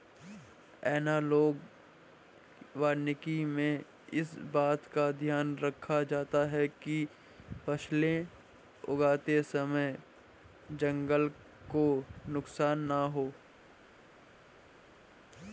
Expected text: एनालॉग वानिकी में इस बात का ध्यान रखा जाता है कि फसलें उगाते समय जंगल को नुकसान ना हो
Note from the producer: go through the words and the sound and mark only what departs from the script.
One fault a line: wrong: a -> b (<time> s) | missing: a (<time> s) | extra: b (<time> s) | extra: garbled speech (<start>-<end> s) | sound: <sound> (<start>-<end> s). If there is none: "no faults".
no faults